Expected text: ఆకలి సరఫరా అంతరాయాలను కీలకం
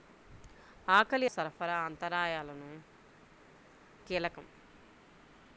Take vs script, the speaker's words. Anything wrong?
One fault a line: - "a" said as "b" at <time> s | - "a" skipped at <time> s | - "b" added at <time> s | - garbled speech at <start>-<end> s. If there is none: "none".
none